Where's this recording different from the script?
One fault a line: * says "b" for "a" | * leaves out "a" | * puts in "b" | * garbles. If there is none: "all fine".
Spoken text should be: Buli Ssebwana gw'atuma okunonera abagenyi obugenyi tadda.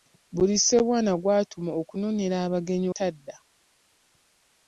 * leaves out "obugenyi"